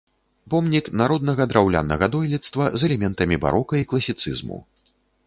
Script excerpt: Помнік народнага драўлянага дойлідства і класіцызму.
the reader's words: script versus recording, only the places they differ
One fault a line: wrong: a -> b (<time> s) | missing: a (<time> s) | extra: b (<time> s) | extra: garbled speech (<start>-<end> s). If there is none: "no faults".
extra: з элементамі барока (2.8 s)